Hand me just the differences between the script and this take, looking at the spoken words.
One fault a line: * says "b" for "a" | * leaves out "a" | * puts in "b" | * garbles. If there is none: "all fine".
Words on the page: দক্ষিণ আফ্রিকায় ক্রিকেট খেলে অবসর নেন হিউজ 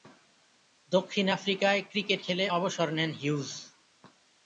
all fine